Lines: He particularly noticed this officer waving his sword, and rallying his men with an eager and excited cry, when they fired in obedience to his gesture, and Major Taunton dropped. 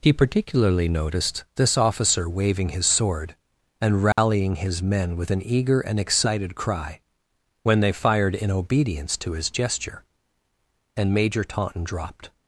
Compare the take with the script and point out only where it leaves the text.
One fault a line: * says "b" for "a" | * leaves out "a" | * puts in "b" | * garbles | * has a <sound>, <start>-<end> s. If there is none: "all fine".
* has a dropout, 4.1-4.2 s